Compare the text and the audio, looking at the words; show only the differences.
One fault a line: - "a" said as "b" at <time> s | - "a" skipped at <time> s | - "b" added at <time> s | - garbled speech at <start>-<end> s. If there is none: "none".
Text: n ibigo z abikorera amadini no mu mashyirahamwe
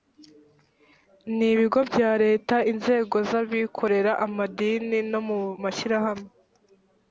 - "bya leta inzego" added at 1.9 s